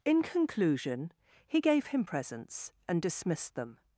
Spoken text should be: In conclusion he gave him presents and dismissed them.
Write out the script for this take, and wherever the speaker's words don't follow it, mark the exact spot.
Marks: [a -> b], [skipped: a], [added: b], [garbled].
In conclusion he gave him presents and dismissed them.